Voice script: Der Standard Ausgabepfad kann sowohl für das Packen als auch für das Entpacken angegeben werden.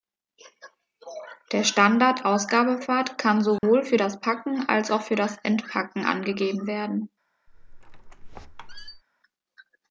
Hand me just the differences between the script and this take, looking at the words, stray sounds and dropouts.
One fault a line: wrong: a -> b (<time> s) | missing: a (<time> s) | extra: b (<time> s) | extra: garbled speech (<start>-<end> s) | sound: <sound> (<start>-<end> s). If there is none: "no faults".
sound: dropout (3.6-3.6 s)
sound: squeak (7.5-9.0 s)